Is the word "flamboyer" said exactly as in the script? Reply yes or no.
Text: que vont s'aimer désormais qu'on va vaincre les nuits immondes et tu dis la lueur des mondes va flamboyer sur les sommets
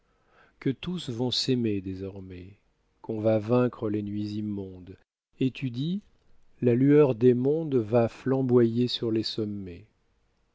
yes